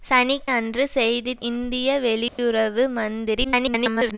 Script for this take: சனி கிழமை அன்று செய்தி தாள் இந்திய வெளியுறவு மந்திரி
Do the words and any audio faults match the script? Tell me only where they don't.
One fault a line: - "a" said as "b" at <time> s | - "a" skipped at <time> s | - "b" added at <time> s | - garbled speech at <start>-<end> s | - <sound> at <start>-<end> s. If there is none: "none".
- "கிழமை" skipped at 0.3 s
- "தாள்" skipped at 1.3 s
- dropout at 2.3-2.4 s
- garbled speech at 3.4-4.2 s